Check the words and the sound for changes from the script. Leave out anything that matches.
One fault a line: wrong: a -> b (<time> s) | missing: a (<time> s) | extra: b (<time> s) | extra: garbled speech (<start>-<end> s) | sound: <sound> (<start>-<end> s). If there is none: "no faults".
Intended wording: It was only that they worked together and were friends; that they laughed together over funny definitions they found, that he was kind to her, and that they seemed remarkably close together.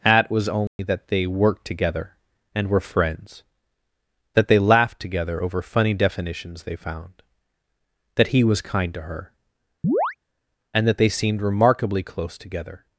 wrong: It -> At (0.0 s)
sound: dropout (0.7-0.8 s)
sound: chirp (9.8-10.2 s)